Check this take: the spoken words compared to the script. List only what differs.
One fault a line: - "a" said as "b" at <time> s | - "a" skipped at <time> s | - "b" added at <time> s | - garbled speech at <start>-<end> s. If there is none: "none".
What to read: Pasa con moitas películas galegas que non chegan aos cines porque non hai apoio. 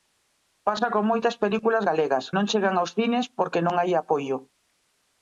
- "que" skipped at 2.2 s